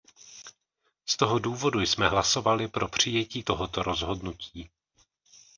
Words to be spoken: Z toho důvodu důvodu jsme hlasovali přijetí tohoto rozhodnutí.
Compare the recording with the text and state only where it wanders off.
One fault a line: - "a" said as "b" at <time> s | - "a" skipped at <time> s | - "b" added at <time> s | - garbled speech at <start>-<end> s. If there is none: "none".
- "důvodu" skipped at 1.8 s
- "pro" added at 2.7 s